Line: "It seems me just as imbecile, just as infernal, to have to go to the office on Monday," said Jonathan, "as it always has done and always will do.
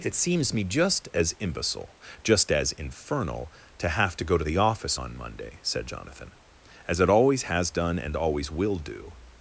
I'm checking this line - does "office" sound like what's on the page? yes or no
yes